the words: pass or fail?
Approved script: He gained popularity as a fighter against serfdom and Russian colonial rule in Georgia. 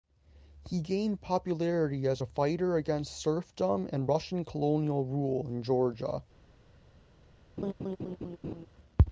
pass